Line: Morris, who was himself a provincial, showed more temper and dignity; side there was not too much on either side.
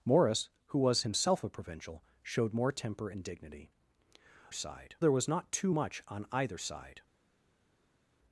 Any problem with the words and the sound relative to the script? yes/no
no